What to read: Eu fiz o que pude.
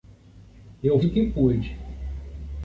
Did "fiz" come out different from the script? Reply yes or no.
yes